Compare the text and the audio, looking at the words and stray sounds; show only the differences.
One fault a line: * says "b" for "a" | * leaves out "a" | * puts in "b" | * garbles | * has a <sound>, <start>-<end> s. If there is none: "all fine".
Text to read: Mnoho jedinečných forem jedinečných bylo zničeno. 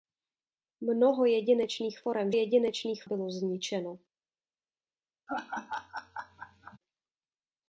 * has a laugh, 5.3-6.8 s